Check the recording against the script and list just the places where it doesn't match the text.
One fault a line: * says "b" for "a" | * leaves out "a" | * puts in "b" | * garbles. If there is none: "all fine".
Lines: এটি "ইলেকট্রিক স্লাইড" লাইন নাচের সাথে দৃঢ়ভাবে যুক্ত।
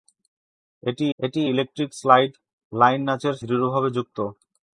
* puts in "এটি"
* leaves out "সাথে"